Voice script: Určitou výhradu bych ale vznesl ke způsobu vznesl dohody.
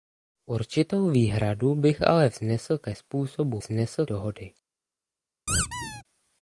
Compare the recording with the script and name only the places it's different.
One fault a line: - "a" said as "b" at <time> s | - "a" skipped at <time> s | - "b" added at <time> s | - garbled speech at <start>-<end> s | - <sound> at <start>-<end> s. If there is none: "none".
- squeak at 5.5-6.0 s